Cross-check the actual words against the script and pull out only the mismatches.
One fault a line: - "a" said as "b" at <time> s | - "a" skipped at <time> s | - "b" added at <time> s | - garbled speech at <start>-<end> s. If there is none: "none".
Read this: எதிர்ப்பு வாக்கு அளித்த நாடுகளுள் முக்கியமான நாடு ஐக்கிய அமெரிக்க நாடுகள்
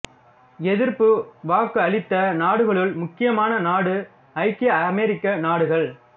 none